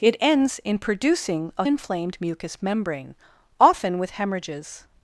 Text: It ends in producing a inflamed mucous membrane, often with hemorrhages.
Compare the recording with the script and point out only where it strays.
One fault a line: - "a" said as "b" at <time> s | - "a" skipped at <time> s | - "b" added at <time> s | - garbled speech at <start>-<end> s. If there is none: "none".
none